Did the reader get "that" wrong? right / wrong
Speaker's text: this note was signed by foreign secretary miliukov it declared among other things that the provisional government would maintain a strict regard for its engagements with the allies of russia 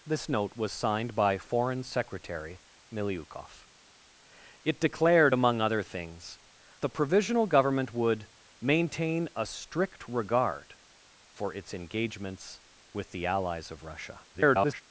wrong